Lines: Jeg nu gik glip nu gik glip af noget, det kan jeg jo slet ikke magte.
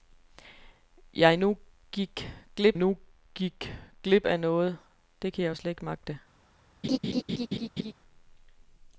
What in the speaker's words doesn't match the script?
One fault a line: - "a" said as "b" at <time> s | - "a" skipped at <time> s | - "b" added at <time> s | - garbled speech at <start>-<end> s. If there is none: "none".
none